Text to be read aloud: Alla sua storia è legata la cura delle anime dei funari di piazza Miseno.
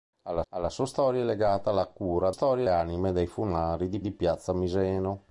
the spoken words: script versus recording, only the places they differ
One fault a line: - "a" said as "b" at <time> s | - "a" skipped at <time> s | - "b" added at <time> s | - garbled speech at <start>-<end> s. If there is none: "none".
- "alla" added at 0.5 s
- "delle" said as "storia" at 2.3 s
- "di" added at 4.0 s